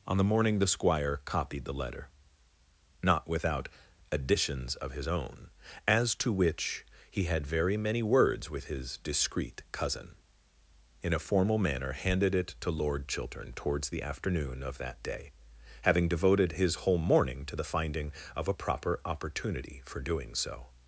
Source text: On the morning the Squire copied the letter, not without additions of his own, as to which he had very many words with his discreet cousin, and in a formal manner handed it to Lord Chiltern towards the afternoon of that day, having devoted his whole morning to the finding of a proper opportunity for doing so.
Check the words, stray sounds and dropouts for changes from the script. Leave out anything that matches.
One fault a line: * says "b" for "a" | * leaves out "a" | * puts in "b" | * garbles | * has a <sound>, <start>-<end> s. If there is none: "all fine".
* leaves out "and"